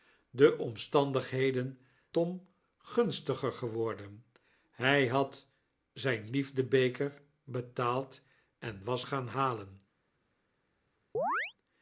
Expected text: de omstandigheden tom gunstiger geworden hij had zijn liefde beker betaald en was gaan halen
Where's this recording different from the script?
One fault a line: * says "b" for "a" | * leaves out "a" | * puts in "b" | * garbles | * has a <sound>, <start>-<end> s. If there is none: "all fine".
* has a chirp, 11.1-11.5 s